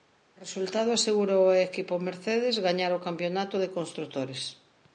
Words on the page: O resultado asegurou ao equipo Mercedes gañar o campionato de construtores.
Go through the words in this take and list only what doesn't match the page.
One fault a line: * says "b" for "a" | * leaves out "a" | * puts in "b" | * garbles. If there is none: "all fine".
all fine